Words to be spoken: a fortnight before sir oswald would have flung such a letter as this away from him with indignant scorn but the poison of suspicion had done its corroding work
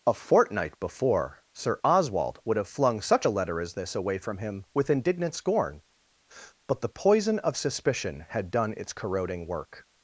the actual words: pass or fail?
pass